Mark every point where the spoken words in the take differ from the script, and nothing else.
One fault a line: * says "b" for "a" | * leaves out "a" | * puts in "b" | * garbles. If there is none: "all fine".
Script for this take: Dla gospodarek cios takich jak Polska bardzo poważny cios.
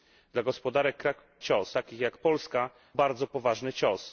all fine